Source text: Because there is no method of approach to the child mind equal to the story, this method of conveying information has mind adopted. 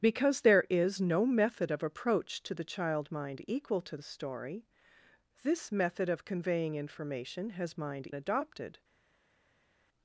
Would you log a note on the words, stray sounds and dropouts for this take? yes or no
no